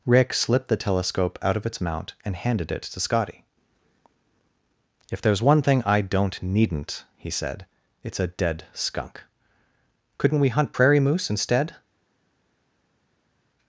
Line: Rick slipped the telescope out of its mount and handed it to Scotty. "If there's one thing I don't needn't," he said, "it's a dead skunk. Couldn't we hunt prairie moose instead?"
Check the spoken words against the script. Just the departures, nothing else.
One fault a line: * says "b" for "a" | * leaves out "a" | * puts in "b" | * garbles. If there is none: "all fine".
all fine